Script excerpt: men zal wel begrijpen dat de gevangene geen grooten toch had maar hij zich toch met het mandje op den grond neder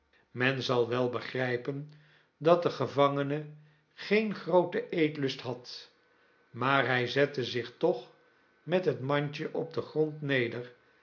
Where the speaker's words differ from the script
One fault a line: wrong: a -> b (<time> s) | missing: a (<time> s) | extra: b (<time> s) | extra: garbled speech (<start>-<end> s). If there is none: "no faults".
wrong: toch -> eetlust (4.9 s)
extra: zette (7.1 s)